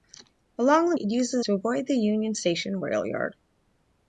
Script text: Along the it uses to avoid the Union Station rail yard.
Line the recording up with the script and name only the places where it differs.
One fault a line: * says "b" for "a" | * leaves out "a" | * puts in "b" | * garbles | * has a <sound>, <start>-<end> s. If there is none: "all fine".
all fine